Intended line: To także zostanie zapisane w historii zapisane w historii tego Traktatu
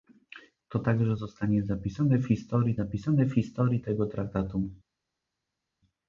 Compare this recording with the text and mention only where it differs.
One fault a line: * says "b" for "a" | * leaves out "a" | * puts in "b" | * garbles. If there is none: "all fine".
all fine